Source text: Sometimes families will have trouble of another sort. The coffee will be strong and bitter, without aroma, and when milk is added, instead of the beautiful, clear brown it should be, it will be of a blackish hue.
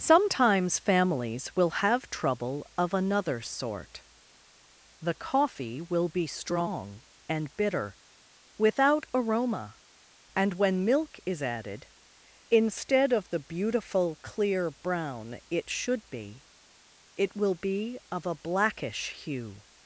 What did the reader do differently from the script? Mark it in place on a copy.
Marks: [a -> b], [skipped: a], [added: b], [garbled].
Sometimes families will have trouble of another sort. The coffee will be strong and bitter, without aroma, and when milk is added, instead of the beautiful, clear brown it should be, it will be of a blackish hue.